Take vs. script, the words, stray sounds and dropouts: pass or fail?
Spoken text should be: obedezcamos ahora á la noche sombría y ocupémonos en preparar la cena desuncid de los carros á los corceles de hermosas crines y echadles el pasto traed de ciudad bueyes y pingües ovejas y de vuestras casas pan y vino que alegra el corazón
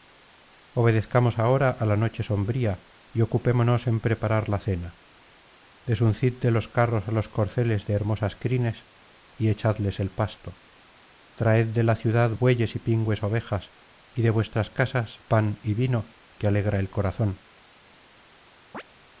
fail